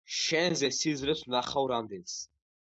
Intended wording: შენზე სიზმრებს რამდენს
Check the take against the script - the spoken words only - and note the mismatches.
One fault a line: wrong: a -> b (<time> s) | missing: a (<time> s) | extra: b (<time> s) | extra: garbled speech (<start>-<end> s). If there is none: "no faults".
extra: ვნახავ (1.3 s)